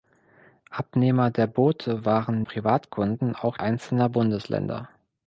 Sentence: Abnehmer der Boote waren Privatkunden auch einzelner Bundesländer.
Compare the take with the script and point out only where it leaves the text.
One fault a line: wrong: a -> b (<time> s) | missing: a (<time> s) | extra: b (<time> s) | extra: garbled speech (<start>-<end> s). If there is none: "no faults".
no faults